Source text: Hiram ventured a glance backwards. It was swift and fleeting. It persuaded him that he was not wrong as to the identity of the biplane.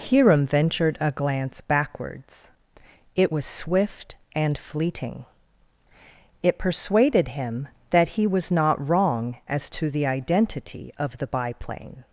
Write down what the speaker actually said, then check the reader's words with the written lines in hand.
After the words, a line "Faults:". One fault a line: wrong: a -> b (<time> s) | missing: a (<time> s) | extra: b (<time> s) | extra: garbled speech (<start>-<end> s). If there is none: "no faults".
Hiram ventured a glance backwards. It was swift and fleeting. It persuaded him that he was not wrong as to the identity of the biplane.
Faults:
no faults